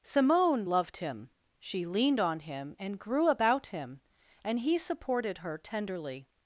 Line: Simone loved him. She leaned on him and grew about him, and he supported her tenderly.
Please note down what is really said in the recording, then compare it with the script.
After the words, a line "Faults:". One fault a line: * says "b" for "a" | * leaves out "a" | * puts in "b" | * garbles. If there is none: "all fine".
Simone loved him. She leaned on him and grew about him, and he supported her tenderly.
Faults:
all fine